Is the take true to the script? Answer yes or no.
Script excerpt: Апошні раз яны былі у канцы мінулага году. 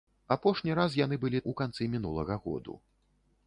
yes